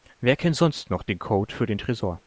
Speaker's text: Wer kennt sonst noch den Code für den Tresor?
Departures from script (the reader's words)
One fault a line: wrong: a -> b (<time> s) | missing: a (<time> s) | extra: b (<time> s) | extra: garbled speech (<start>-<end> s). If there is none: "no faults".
no faults